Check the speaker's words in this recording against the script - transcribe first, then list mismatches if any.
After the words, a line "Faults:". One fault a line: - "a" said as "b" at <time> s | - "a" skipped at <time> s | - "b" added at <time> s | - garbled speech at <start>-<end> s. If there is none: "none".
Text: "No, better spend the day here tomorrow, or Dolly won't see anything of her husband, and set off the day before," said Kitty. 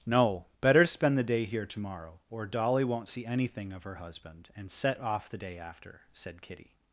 "No, better spend the day here tomorrow, or Dolly won't see anything of her husband, and set off the day after," said Kitty.
Faults:
- "before" said as "after" at 5.6 s